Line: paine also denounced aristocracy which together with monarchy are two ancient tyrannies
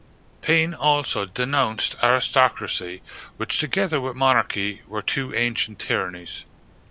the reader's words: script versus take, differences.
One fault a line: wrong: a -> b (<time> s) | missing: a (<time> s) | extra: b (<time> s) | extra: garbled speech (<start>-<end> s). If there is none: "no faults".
wrong: are -> were (4.8 s)